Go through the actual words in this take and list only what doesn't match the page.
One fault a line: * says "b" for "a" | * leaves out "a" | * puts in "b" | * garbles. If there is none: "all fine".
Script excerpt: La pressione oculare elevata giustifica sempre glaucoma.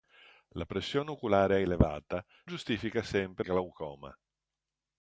all fine